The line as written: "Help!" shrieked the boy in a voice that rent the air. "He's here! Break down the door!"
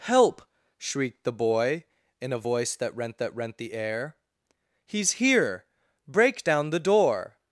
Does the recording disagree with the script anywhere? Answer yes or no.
yes